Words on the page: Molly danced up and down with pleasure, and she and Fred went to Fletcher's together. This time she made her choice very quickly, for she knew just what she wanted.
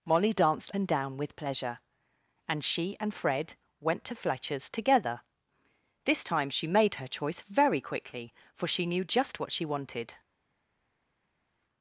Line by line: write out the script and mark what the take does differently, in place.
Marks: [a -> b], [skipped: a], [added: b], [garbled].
Molly danced [skipped: up] and down with pleasure, and she and Fred went to Fletcher's together. This time she made her choice very quickly, for she knew just what she wanted.